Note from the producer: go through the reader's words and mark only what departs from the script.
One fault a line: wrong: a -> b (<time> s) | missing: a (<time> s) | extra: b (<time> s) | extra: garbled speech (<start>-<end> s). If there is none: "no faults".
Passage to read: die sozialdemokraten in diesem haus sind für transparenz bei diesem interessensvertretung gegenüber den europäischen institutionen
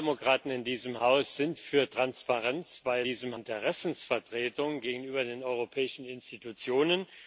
no faults